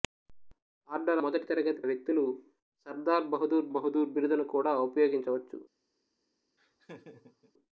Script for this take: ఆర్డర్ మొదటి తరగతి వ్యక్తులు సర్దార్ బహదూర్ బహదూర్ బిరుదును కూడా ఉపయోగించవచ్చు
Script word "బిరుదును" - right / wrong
right